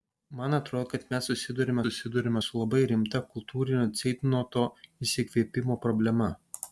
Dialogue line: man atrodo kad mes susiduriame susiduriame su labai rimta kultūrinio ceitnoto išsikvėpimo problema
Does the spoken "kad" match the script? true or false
true